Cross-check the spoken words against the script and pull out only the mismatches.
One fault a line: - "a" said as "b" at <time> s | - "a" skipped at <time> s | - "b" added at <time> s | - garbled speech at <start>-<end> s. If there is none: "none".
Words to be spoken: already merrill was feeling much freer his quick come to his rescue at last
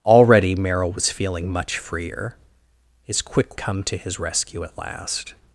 none